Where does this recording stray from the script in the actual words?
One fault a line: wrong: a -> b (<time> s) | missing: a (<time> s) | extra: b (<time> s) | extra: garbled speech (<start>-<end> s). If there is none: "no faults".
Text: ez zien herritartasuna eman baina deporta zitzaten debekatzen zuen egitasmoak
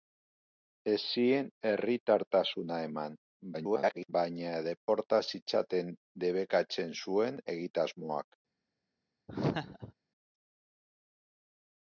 extra: garbled speech (3.5-4.1 s)